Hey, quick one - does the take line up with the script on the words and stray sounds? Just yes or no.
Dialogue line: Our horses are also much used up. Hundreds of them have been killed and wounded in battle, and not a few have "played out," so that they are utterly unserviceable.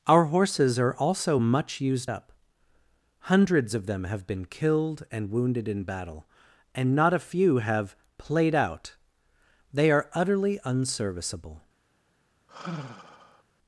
no